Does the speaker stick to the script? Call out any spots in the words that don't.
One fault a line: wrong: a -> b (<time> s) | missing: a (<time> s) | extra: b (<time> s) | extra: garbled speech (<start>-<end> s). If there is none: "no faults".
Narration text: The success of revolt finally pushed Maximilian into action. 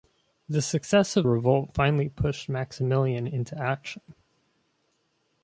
no faults